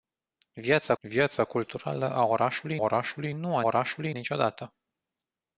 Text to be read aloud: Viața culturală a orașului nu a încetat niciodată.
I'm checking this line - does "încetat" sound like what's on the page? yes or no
no